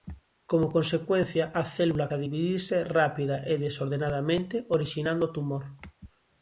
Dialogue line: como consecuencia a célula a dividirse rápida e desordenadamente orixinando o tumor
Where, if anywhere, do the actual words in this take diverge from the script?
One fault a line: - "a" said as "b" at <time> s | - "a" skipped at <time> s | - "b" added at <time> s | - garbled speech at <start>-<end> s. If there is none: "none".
none